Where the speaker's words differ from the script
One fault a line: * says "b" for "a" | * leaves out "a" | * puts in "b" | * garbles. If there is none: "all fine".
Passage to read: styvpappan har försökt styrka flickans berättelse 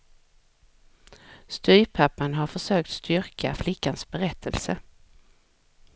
all fine